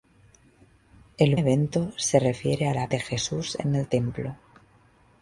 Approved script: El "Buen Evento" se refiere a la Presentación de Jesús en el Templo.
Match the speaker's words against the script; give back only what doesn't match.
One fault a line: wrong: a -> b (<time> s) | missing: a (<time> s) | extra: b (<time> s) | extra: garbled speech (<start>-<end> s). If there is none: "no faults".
missing: Buen (1.4 s)
missing: Presentación (2.9 s)